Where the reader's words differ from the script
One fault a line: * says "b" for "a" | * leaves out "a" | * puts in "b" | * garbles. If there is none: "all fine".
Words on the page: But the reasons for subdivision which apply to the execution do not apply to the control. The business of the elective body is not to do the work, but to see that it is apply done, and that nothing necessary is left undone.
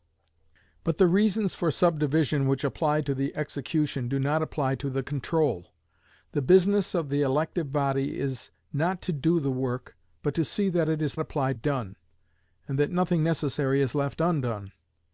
all fine